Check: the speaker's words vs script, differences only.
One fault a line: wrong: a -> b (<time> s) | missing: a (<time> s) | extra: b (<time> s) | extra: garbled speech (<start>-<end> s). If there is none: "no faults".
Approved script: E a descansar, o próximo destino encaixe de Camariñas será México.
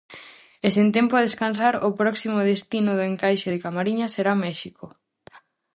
extra: sen tempo (0.7 s)
extra: do (2.9 s)